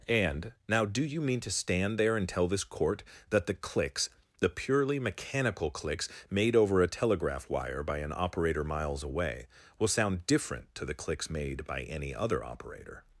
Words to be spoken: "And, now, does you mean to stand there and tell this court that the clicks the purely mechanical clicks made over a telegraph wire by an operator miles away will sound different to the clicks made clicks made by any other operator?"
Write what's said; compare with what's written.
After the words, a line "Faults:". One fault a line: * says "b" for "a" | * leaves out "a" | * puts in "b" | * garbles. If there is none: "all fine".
"And, now, do you mean to stand there and tell this court that the clicks the purely mechanical clicks made over a telegraph wire by an operator miles away will sound different to the clicks made by any other operator?"
Faults:
* says "do" for "does"
* leaves out "clicks made"